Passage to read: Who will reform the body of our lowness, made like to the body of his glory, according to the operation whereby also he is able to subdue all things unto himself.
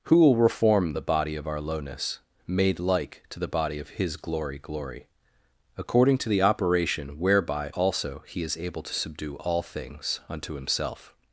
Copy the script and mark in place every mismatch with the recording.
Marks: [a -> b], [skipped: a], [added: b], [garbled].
Who will reform the body of our lowness, made like to the body of his glory, [added: glory] according to the operation whereby also he is able to subdue all things unto himself.